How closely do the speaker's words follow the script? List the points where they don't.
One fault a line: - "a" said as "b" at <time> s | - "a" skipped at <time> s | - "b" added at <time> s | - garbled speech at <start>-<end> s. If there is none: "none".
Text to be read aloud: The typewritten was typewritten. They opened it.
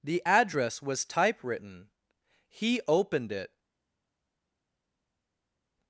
- "typewritten" said as "address" at 0.2 s
- "They" said as "He" at 2.5 s